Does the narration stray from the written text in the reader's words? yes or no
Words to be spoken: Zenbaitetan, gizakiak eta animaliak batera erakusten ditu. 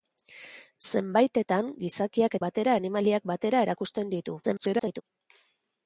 yes